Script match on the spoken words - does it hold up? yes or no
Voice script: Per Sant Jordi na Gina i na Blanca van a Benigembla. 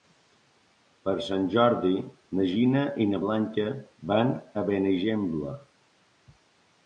yes